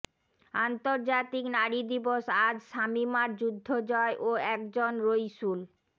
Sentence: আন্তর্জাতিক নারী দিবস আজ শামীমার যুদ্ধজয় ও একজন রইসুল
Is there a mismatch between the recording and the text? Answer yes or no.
no